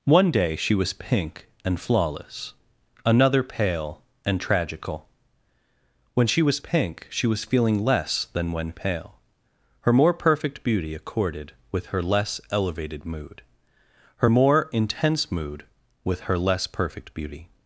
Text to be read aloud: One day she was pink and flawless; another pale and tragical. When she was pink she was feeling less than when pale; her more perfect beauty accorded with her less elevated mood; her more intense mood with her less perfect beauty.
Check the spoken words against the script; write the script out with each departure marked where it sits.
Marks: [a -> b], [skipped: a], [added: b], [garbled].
One day she was pink and flawless; another pale and tragical. When she was pink she was feeling less than when pale; her more perfect beauty accorded with her less elevated mood; her more intense mood with her less perfect beauty.